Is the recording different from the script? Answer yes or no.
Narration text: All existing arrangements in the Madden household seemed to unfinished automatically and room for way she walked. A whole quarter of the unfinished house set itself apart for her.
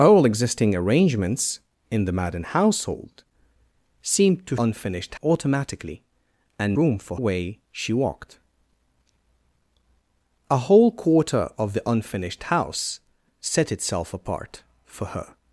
no